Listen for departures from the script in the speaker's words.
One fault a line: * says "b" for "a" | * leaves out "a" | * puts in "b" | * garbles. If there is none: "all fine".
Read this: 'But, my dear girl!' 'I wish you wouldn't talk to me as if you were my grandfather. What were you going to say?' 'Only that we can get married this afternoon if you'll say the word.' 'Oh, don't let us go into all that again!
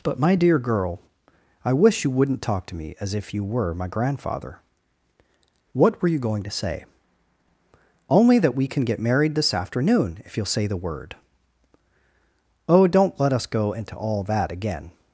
all fine